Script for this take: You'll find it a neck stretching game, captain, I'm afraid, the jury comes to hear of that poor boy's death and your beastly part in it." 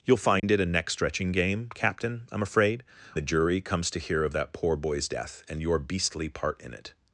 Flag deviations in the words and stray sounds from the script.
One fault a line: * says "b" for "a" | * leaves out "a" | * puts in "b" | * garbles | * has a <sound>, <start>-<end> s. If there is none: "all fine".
* has a dropout, 0.4-0.4 s